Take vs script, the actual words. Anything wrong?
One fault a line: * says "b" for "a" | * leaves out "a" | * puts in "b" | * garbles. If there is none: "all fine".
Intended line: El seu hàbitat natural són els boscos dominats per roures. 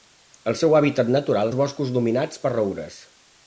* leaves out "són"